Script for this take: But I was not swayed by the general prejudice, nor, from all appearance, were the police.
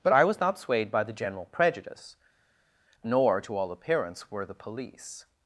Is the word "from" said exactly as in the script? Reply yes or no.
no